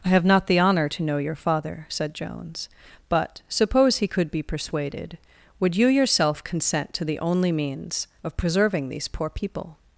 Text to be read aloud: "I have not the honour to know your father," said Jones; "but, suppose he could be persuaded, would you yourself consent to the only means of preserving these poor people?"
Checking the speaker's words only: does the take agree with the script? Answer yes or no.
yes